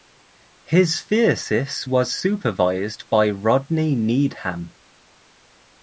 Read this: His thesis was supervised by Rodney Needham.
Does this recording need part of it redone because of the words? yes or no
no